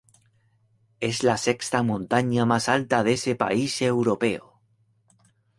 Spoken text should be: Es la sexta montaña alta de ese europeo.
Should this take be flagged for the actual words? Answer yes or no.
yes